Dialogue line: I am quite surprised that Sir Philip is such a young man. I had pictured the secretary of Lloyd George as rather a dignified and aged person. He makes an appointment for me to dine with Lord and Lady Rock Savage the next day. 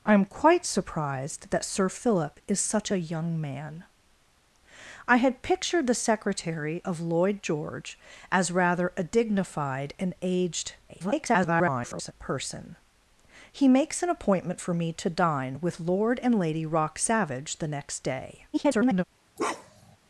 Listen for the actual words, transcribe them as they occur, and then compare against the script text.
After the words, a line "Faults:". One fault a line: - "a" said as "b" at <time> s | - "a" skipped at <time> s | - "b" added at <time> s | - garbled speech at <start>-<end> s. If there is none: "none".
I am quite surprised that Sir Philip is such a young man. I had pictured the secretary of Lloyd George as rather a dignified and aged [garbled] person. He makes an appointment for me to dine with Lord and Lady Rock Savage the next day. [garbled]
Faults:
- garbled speech at 10.9-12.1 s
- garbled speech at 18.5-19.0 s